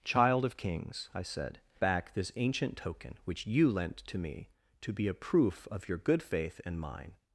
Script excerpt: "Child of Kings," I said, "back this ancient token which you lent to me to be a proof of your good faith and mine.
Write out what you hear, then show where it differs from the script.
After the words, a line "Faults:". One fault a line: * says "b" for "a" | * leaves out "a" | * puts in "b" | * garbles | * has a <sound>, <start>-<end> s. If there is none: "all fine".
"Child of Kings," I said, "back this ancient token which you lent to me to be a proof of your good faith and mine.
Faults:
all fine